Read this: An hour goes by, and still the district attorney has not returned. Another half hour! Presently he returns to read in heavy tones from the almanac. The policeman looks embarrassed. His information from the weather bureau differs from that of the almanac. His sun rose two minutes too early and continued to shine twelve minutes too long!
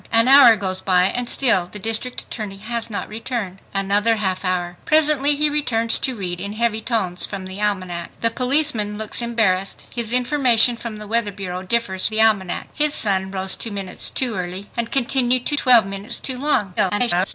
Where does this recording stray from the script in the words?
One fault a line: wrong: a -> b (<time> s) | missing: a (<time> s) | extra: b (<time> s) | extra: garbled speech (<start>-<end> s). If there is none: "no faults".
missing: from that of (12.1 s)
missing: shine (15.6 s)
extra: garbled speech (16.8-17.3 s)